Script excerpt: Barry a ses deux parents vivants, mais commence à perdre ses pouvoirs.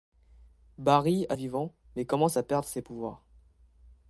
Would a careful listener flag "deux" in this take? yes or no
yes